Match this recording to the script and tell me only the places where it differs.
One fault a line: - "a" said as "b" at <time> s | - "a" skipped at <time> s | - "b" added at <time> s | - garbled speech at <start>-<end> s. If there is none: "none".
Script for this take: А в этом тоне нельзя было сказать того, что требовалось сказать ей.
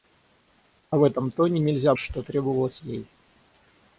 - "было сказать того" skipped at 1.9 s
- "сказать" skipped at 2.8 s